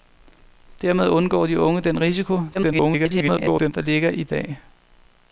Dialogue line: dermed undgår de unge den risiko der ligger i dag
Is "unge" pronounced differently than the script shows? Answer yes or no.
no